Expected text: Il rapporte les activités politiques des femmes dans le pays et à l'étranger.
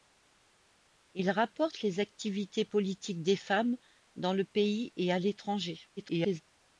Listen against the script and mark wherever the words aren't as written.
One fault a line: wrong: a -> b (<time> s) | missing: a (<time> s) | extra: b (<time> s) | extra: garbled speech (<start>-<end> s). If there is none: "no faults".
extra: garbled speech (6.0-6.4 s)